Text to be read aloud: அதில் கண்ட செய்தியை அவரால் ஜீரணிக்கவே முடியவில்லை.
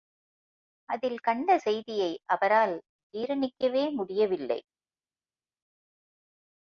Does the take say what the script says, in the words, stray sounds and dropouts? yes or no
yes